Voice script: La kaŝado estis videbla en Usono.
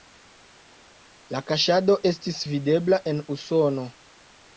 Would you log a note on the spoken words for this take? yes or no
no